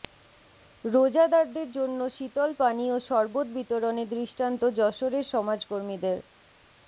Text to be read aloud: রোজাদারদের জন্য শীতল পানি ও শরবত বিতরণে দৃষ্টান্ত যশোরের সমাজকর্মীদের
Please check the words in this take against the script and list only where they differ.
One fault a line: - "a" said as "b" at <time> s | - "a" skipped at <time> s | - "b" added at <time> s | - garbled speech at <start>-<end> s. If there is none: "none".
none